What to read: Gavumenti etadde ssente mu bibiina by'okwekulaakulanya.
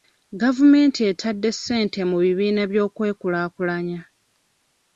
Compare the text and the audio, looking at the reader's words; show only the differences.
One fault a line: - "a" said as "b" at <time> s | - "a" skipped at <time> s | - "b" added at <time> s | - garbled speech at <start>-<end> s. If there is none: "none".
none